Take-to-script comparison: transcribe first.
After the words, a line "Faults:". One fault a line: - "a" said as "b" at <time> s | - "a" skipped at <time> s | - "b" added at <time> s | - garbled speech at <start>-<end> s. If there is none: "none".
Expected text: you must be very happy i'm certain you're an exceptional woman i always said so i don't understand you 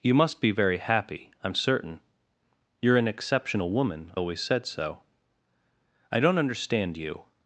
you must be very happy i'm certain you're an exceptional woman always said so i don't understand you
Faults:
- "i" skipped at 4.1 s